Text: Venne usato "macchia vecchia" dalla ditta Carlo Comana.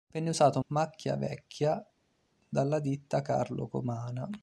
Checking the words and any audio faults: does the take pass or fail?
pass